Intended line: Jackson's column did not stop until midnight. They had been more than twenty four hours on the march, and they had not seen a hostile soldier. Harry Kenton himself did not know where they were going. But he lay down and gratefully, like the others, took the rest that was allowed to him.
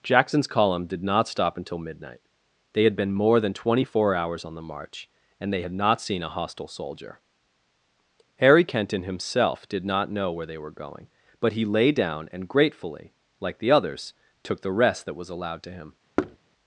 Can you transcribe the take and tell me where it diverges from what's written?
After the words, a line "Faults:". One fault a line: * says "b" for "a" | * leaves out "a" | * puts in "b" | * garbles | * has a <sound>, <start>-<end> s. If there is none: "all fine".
Jackson's column did not stop until midnight. They had been more than twenty four hours on the march, and they had not seen a hostile soldier. Harry Kenton himself did not know where they were going. But he lay down and gratefully, like the others, took the rest that was allowed to him.
Faults:
* has a thud, 16.2-16.4 s